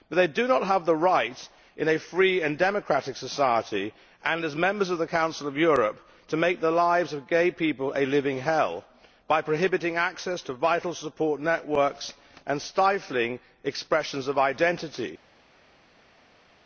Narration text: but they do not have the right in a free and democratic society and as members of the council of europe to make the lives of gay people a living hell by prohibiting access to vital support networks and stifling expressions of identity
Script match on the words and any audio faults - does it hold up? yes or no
yes